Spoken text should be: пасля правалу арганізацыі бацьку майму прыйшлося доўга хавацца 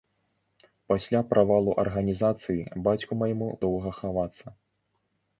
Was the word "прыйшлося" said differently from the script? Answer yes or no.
yes